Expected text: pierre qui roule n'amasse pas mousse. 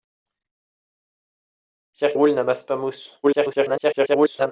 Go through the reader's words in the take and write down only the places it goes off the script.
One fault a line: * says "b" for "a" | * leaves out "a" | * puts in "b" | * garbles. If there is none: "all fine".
* leaves out "qui"
* garbles